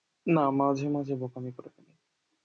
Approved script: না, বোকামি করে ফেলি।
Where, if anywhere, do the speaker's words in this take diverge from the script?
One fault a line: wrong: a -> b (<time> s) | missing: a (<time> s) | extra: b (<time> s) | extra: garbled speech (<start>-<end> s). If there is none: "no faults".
extra: মাঝে মাঝে (0.5 s)